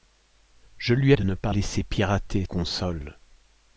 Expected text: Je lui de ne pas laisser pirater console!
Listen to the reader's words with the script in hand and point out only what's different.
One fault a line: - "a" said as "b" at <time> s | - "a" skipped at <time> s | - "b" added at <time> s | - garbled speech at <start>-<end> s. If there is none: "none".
none